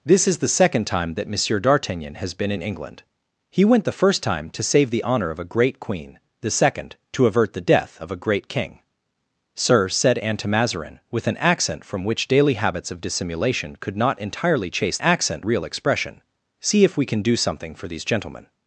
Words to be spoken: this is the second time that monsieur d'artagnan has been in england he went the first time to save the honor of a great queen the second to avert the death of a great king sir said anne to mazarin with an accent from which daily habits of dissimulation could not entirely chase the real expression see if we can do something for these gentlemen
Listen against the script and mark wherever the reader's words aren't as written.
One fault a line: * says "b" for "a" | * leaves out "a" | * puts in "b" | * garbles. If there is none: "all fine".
* says "accent" for "the"